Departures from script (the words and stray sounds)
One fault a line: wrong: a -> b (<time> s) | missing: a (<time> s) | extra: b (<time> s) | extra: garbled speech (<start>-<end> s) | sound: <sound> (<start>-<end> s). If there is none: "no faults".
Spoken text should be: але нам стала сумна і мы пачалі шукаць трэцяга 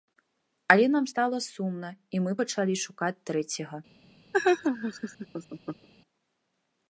sound: laugh (4.3-5.9 s)